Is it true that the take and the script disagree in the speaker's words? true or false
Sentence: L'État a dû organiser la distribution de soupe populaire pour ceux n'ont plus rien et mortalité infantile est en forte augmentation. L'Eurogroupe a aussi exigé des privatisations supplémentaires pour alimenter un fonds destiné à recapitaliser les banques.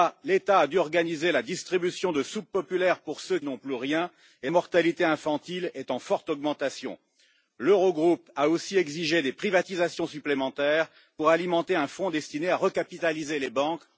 false